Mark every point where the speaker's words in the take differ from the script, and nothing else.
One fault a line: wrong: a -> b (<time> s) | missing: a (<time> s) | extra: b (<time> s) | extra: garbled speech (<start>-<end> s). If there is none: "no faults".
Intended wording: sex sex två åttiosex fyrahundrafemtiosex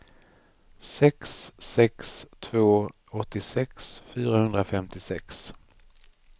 no faults